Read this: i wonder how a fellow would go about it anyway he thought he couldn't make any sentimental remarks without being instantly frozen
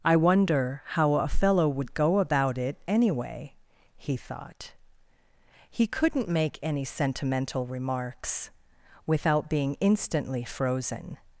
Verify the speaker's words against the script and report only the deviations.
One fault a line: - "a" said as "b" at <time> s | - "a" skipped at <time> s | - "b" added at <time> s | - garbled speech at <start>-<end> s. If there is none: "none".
none